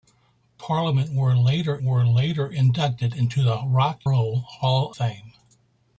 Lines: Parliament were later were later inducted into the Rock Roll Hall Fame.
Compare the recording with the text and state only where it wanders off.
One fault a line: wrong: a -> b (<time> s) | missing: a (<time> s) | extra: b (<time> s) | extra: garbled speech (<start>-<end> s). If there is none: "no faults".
no faults